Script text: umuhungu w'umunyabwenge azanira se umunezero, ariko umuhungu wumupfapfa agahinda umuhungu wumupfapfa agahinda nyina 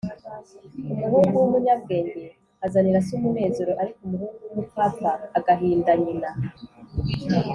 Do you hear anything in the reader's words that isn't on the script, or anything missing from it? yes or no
yes